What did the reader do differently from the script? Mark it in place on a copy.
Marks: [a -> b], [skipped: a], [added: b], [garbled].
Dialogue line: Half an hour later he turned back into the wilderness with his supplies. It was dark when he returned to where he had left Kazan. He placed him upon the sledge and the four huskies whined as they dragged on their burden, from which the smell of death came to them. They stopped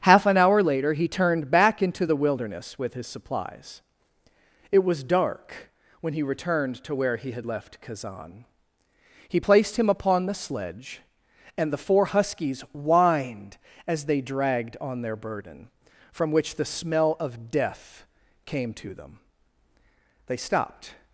Half an hour later he turned back into the wilderness with his supplies. It was dark when he returned to where he had left Kazan. He placed him upon the sledge and the four huskies whined as they dragged on their burden, from which the smell of death came to them. They stopped